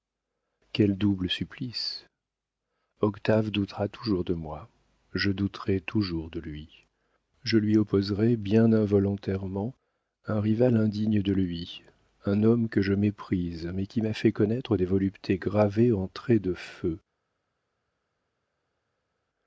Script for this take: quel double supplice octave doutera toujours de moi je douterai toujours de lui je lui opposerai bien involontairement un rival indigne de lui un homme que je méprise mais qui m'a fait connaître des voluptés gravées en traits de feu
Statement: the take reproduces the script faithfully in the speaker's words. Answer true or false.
true